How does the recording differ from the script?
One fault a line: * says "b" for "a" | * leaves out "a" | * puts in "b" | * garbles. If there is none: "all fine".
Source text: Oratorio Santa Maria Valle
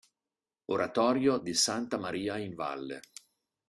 * puts in "di"
* puts in "in"